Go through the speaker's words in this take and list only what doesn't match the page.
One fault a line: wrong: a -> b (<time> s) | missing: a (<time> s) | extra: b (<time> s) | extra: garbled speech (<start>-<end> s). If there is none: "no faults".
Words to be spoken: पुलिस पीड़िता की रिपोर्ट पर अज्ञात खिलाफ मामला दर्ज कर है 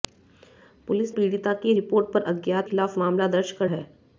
no faults